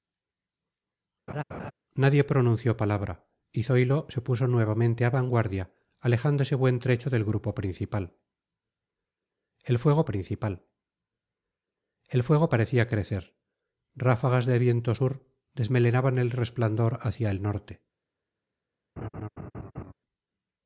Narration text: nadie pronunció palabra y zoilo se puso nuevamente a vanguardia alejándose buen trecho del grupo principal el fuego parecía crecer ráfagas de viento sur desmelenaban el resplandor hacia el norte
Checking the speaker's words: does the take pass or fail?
fail